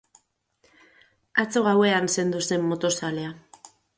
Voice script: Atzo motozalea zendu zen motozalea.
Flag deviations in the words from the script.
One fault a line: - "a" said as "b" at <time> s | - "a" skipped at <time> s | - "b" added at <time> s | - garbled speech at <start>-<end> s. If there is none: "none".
- "motozalea" said as "gauean" at 1.7 s